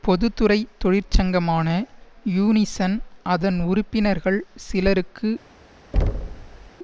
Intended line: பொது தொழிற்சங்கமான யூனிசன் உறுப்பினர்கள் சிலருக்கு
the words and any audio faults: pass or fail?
fail